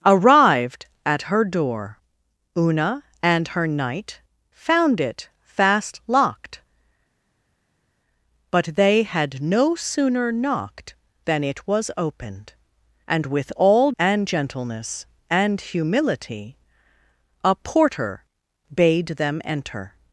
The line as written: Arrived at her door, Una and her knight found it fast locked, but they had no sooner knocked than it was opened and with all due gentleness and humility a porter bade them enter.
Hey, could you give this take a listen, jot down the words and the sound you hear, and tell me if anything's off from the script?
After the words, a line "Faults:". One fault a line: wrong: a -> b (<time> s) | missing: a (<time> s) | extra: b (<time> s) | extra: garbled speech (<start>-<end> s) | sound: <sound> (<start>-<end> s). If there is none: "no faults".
Arrived at her door, Una and her knight found it fast locked, but they had no sooner knocked than it was opened and with all and gentleness and humility a porter bade them enter.
Faults:
wrong: due -> and (14.0 s)